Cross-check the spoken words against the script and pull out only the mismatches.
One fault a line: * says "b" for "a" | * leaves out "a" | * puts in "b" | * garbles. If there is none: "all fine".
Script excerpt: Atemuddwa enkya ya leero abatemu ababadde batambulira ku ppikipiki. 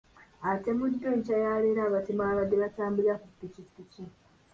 all fine